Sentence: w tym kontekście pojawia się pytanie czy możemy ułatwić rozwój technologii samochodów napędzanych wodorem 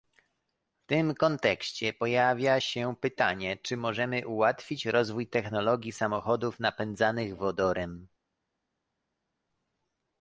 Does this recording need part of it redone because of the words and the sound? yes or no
no